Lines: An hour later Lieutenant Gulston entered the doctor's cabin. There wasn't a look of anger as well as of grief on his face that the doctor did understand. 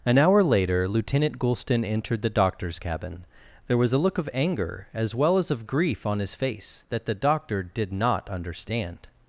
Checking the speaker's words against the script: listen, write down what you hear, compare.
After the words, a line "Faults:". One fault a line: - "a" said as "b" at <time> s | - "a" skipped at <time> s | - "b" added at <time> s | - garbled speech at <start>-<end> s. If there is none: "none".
An hour later Lieutenant Gulston entered the doctor's cabin. There was a look of anger as well as of grief on his face that the doctor did not understand.
Faults:
- "wasn't" said as "was" at 3.8 s
- "not" added at 7.9 s